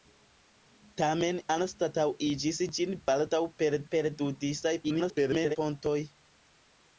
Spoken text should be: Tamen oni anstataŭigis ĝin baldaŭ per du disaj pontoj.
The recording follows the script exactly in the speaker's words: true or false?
false